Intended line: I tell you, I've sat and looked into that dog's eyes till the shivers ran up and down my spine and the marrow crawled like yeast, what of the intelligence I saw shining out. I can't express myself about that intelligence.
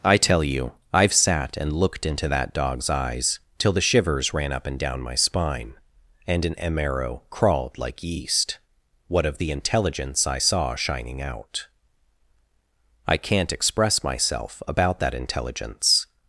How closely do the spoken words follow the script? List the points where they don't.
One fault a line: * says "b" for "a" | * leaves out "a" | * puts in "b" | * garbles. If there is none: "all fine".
* says "an" for "the"